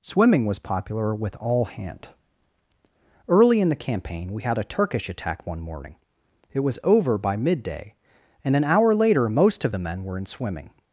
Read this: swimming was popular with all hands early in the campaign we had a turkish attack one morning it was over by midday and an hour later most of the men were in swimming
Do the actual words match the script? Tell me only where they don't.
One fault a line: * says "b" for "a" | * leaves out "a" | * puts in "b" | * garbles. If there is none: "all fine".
* says "hand" for "hands"